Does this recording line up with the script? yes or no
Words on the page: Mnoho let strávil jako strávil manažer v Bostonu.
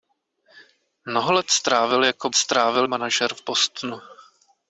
yes